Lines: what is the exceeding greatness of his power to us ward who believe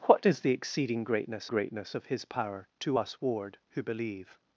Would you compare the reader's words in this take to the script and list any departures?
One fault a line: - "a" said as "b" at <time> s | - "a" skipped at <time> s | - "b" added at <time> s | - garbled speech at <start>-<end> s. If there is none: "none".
- "greatness" added at 1.5 s